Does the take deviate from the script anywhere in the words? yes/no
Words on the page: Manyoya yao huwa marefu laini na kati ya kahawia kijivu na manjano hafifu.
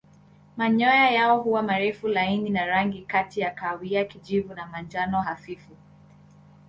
yes